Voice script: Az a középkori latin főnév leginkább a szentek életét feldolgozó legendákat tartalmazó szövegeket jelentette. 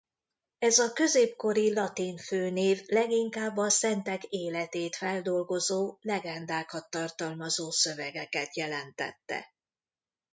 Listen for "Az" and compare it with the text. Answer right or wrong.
wrong